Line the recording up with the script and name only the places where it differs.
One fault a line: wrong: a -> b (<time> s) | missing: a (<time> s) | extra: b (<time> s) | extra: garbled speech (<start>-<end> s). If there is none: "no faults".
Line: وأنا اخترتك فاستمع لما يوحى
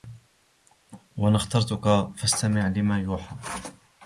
no faults